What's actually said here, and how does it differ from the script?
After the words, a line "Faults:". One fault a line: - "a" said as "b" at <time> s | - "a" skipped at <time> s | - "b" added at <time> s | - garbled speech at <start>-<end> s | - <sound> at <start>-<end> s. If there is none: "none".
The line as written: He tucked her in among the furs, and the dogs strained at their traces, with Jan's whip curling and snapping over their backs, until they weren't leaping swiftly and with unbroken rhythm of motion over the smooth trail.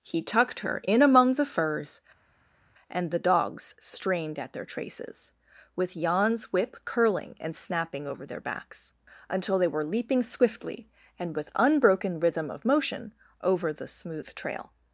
He tucked her in among the furs, and the dogs strained at their traces, with Jan's whip curling and snapping over their backs, until they were leaping swiftly and with unbroken rhythm of motion over the smooth trail.
Faults:
- "weren't" said as "were" at 9.7 s